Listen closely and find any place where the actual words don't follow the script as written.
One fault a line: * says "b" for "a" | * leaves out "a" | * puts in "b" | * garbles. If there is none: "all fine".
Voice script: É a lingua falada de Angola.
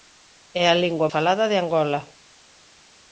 all fine